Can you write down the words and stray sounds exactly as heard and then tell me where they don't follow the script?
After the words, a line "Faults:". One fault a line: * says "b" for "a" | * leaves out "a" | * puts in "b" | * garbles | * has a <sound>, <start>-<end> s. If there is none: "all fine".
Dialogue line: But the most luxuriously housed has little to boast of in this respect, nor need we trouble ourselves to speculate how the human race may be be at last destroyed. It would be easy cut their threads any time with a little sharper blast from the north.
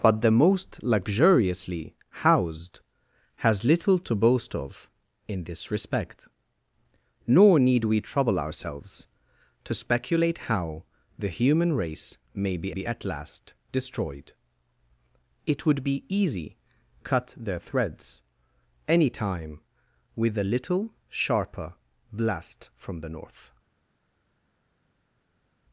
But the most luxuriously housed has little to boast of in this respect, nor need we trouble ourselves to speculate how the human race may be be at last destroyed. It would be easy cut their threads any time with a little sharper blast from the north.
Faults:
all fine